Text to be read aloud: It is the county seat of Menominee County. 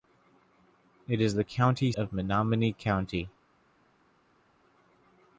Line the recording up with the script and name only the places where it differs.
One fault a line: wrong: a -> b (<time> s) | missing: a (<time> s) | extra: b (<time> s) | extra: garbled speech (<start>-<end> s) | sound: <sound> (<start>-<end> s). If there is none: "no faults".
missing: seat (1.9 s)